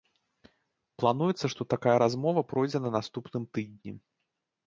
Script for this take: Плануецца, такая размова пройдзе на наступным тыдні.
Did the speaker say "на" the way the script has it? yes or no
yes